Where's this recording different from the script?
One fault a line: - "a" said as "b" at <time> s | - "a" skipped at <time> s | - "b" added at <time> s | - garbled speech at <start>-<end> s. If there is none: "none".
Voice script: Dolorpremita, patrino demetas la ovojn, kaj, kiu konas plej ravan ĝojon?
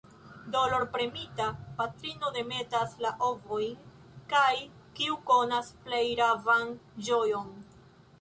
none